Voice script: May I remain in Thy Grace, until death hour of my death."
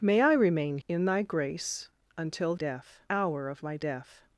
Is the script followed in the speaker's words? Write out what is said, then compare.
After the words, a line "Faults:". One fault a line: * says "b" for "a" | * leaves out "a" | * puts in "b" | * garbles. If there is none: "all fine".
May I remain in Thy Grace, until death hour of my death."
Faults:
all fine